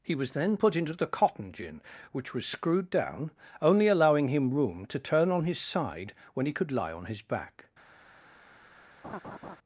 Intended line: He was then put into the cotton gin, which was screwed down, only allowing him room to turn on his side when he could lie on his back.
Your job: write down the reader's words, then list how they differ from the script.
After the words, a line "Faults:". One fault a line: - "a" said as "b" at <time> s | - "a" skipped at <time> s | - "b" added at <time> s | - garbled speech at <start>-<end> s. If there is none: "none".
He was then put into the cotton gin, which was screwed down, only allowing him room to turn on his side when he could lie on his back.
Faults:
none